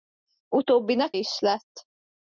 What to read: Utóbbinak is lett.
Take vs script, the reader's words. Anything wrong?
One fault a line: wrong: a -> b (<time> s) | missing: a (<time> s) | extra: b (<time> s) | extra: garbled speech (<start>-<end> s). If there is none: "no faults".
no faults